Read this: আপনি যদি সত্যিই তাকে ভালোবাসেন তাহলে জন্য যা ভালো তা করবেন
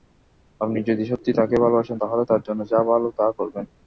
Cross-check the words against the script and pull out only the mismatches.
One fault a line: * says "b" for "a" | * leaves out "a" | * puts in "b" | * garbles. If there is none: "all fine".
* puts in "তার"